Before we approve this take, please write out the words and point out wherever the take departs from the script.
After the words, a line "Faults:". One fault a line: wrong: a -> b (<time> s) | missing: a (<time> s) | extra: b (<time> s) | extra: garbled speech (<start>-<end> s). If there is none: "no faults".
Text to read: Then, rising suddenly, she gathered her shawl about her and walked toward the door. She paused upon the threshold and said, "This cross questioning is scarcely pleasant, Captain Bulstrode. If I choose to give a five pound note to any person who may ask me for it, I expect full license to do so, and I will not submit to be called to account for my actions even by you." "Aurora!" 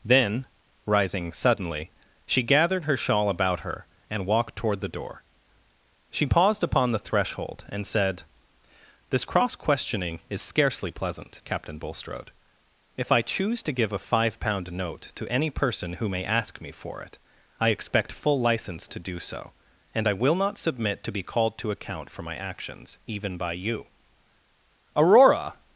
Then, rising suddenly, she gathered her shawl about her and walked toward the door. She paused upon the threshold and said, "This cross questioning is scarcely pleasant, Captain Bulstrode. If I choose to give a five pound note to any person who may ask me for it, I expect full license to do so, and I will not submit to be called to account for my actions even by you." "Aurora!"
Faults:
no faults